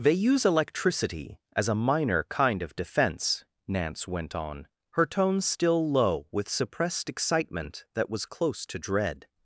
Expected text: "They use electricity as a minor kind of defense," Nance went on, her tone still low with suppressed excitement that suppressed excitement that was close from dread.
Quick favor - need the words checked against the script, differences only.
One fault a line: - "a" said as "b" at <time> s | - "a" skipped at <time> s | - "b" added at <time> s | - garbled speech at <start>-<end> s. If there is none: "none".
- "suppressed excitement that" skipped at 8.1 s
- "from" said as "to" at 8.7 s